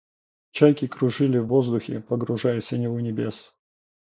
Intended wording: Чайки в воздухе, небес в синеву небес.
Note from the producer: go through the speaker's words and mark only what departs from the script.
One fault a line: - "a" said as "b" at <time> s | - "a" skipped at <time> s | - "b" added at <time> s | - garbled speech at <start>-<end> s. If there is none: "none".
- "кружили" added at 0.9 s
- "небес" said as "погружаясь" at 2.0 s